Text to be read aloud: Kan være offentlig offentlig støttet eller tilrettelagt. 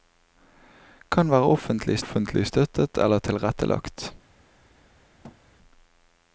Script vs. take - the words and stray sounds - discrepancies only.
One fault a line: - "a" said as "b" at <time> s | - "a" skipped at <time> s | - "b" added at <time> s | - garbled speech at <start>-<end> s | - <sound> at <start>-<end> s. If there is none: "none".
- thud at 5.2-5.4 s